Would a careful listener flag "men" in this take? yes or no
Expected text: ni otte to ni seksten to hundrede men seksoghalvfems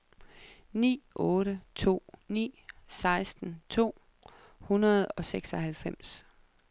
yes